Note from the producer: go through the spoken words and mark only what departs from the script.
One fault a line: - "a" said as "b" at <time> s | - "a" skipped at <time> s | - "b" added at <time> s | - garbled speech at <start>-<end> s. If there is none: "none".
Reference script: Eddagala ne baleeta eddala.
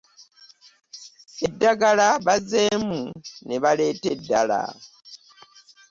- "bazzeemu" added at 2.2 s